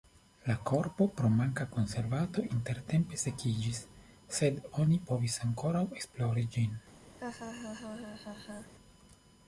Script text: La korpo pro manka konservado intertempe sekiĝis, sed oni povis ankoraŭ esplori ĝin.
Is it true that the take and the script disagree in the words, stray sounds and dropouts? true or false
true